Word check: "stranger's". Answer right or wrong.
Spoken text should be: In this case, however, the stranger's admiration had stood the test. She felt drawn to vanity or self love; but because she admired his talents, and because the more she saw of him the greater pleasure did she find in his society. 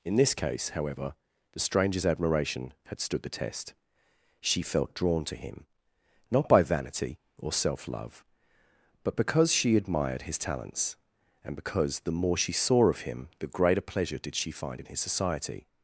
right